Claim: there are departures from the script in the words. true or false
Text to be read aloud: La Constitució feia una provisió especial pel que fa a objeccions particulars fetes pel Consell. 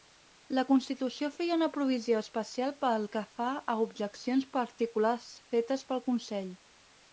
false